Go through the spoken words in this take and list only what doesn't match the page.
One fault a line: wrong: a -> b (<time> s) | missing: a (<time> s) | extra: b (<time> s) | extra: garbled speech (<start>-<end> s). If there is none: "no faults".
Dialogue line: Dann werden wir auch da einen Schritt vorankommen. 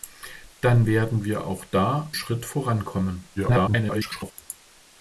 missing: einen (2.1 s)
extra: garbled speech (3.4-4.3 s)